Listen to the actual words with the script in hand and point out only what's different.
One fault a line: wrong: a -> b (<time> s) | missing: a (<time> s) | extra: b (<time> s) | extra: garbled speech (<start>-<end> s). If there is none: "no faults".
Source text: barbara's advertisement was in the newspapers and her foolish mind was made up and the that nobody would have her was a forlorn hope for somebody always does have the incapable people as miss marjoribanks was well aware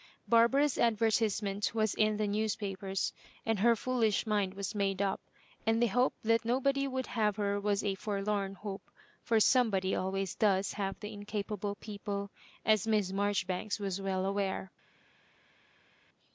extra: hope (5.9 s)